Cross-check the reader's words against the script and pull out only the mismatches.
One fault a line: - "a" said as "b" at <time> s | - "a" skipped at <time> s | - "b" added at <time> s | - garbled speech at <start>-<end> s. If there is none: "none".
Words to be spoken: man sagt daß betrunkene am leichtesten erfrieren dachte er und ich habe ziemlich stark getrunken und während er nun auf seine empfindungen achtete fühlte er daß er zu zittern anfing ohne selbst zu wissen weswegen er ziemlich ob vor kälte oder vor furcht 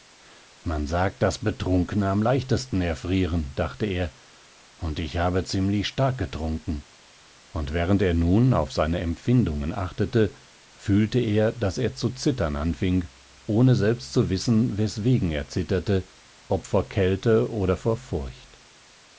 - "ziemlich" said as "zitterte" at 15.5 s